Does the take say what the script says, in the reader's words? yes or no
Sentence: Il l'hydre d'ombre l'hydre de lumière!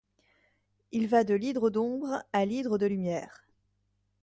no